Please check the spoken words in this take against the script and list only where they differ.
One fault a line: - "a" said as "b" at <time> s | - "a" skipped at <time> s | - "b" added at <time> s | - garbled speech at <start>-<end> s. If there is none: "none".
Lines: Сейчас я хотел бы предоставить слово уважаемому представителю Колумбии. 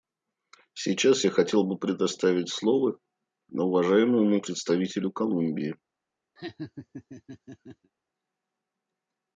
none